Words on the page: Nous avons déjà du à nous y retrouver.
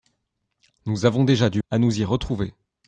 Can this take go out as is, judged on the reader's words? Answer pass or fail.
pass